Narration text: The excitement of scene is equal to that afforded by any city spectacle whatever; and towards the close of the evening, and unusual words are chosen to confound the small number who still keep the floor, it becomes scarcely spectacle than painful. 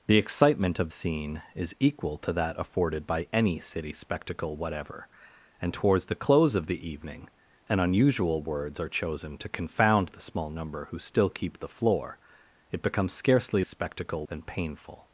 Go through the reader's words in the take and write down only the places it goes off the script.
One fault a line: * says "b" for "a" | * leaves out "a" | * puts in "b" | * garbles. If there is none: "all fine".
all fine